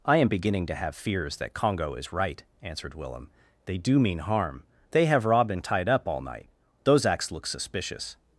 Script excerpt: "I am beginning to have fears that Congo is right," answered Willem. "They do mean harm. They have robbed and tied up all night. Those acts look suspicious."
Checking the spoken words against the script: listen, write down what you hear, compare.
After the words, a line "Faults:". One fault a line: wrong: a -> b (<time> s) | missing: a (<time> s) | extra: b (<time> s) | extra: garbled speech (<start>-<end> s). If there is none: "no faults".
"I am beginning to have fears that Congo is right," answered Willem. "They do mean harm. They have robbed and tied up all night. Those acts look suspicious."
Faults:
no faults